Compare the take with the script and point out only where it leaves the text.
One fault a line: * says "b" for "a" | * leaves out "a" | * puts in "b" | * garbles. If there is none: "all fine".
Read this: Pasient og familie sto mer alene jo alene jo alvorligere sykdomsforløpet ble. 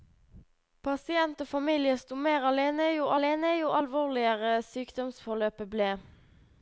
all fine